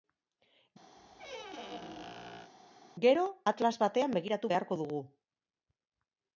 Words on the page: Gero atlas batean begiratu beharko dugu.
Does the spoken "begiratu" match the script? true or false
true